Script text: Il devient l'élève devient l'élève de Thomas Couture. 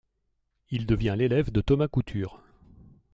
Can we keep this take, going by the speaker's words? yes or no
no